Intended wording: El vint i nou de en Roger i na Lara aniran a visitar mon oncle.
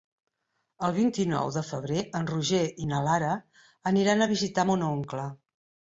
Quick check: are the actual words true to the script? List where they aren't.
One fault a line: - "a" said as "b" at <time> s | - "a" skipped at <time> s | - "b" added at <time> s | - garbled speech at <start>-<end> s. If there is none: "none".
- "febrer" added at 1.7 s